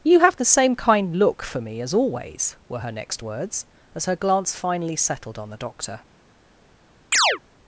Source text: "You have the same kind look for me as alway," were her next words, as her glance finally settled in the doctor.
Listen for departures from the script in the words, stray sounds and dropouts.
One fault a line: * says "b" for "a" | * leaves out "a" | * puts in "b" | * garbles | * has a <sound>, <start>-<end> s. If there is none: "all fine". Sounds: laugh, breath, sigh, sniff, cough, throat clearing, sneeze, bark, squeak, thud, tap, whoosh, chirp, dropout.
* says "always" for "alway"
* says "on" for "in"
* has a chirp, 7.1-7.4 s